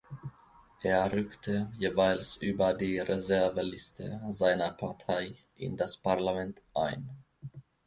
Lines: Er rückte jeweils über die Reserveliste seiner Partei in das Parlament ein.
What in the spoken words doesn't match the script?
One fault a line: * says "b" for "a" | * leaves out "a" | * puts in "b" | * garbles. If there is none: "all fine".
all fine